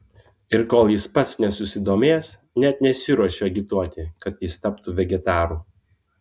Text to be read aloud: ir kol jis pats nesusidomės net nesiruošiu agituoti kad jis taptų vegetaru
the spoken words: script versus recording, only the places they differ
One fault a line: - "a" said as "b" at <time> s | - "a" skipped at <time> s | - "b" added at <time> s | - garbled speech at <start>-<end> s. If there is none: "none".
none